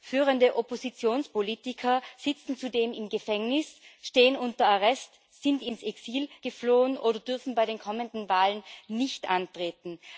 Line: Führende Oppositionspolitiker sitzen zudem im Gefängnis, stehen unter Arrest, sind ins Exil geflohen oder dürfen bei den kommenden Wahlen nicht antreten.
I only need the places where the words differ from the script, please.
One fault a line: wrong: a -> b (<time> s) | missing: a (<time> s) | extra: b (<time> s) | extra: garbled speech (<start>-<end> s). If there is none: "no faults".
no faults